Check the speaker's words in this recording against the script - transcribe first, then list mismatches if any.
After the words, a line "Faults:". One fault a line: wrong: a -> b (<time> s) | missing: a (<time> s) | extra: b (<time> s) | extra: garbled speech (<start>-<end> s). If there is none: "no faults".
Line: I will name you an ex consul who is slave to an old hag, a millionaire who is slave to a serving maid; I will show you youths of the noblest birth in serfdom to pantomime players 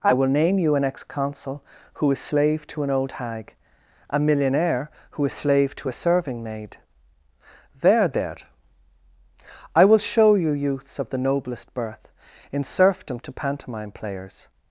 I will name you an ex consul who is slave to an old hag, a millionaire who is slave to a serving maid; there there I will show you youths of the noblest birth in serfdom to pantomime players
Faults:
extra: there there (7.8 s)